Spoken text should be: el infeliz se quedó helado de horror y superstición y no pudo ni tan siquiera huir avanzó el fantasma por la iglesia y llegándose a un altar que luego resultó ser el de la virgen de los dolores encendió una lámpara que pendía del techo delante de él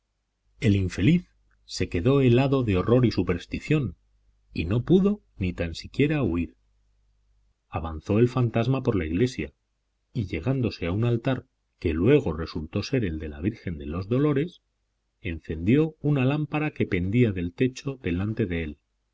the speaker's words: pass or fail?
pass